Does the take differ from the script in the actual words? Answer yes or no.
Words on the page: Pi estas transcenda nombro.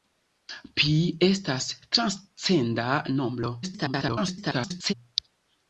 yes